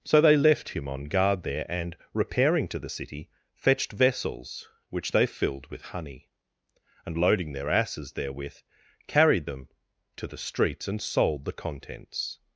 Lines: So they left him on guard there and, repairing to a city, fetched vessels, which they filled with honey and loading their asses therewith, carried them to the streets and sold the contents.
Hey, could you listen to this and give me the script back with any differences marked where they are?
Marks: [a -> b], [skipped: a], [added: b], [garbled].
So they left him on guard there and, repairing to [a -> the] city, fetched vessels, which they filled with honey and loading their asses therewith, carried them to the streets and sold the contents.